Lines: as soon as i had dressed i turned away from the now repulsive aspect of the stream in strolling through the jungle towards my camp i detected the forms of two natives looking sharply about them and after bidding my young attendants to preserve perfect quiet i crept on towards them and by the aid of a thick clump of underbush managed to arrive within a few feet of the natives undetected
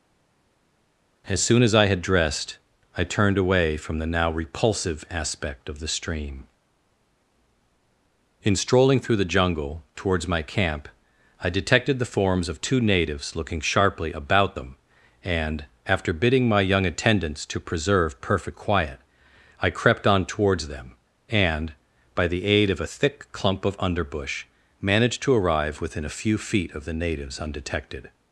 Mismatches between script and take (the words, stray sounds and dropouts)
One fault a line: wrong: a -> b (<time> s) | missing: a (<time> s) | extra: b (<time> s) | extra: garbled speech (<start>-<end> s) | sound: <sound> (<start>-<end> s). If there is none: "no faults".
no faults